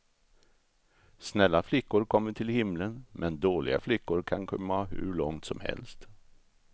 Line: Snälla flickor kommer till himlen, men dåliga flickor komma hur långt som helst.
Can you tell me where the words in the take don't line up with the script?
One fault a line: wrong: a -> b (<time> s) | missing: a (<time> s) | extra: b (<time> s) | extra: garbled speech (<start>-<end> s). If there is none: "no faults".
extra: kan (4.2 s)